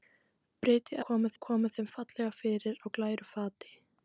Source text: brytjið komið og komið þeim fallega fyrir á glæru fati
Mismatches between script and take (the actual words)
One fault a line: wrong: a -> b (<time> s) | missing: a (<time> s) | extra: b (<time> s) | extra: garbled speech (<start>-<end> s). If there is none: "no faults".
no faults